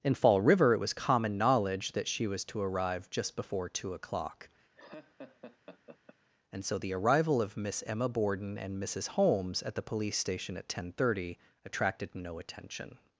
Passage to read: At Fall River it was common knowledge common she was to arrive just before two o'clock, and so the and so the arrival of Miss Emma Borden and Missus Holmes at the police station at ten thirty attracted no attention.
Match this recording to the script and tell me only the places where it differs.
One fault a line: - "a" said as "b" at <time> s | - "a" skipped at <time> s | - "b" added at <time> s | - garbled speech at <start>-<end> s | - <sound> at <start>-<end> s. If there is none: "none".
- "At" said as "In" at 0.0 s
- "common" said as "that" at 1.9 s
- laugh at 4.7-6.2 s
- "and so the" skipped at 6.9 s